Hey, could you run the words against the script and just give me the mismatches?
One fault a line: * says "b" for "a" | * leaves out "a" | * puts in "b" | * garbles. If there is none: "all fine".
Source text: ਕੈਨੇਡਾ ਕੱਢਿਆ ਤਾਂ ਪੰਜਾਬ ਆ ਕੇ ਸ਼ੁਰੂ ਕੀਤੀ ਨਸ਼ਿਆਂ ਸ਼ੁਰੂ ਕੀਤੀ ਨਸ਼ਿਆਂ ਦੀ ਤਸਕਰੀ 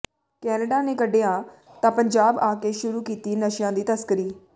* puts in "ਨੇ"
* leaves out "ਸ਼ੁਰੂ ਕੀਤੀ ਨਸ਼ਿਆਂ"